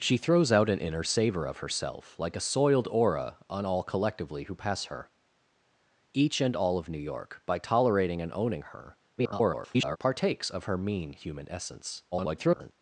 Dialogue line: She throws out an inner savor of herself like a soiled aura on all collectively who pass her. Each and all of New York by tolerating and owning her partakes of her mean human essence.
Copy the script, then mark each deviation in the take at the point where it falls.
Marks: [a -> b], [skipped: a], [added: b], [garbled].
She throws out an inner savor of herself like a soiled aura on all collectively who pass her. Each and all of New York by tolerating and owning her [garbled] partakes of her mean human essence. [garbled]